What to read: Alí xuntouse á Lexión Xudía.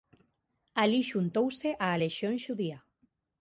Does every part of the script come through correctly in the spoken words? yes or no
yes